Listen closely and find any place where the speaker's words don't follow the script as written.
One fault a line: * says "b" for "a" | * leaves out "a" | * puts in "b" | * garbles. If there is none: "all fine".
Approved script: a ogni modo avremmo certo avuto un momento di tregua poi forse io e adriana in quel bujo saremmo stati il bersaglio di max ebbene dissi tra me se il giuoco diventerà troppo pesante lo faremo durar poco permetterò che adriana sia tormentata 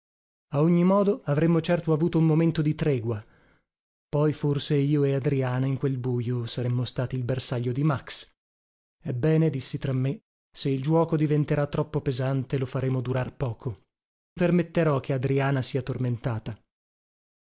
all fine